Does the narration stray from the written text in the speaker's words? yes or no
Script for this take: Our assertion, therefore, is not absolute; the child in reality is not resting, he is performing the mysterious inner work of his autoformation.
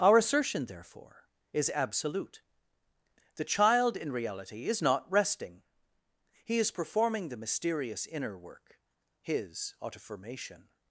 yes